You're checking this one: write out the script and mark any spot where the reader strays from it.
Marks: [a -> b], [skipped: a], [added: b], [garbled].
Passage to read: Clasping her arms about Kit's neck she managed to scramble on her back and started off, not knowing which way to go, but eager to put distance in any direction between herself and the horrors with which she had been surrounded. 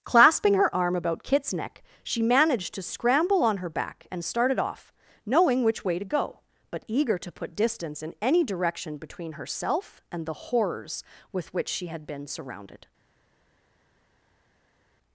Clasping her [arms -> arm] about Kit's neck she managed to scramble on her back and started off, [skipped: not] knowing which way to go, but eager to put distance in any direction between herself and the horrors with which she had been surrounded.